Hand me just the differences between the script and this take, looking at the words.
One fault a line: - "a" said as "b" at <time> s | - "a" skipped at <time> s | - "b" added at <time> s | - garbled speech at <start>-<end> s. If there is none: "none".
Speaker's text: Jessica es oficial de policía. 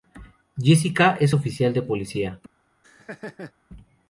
none